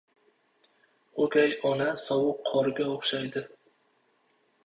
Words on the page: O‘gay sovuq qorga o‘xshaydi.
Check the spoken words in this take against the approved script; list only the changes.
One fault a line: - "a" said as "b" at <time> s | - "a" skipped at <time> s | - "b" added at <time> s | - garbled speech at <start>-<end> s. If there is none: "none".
- "ona" added at 1.7 s